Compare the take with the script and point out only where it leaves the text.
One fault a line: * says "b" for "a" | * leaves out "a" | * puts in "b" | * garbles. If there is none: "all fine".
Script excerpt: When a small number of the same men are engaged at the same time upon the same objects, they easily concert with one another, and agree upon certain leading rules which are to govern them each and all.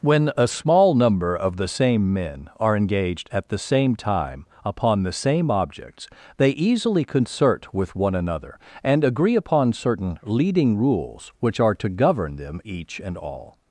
all fine